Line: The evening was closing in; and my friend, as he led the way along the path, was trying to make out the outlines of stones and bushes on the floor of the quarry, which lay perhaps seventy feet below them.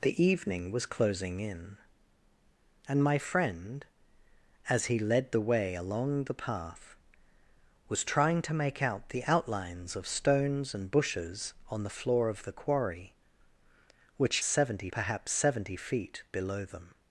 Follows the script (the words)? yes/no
no